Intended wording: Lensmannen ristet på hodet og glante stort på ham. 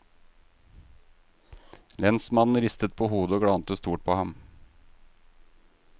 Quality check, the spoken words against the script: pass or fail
pass